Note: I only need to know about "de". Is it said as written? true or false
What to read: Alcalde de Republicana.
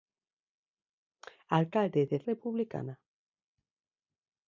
true